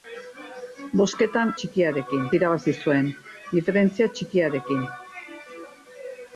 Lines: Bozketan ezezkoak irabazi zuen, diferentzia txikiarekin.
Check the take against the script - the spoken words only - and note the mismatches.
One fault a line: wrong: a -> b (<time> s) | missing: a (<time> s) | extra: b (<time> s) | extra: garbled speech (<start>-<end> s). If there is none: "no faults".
wrong: ezezkoak -> txikiarekin (1.6 s)